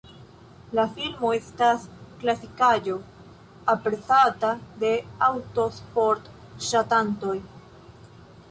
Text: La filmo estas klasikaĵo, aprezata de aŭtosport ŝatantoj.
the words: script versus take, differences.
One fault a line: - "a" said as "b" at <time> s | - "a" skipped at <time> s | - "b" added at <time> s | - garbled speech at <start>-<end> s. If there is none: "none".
none